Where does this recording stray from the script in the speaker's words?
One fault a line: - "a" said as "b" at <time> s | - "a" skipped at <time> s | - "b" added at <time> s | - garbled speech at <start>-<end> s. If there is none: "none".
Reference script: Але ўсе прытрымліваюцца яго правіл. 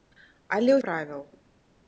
- "ўсе прытрымліваюцца яго" skipped at 0.8 s